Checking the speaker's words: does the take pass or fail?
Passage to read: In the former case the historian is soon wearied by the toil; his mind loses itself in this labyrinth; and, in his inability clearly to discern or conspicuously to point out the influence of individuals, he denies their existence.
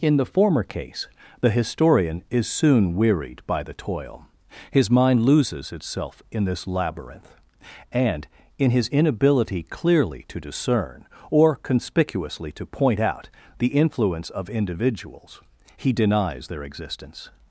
pass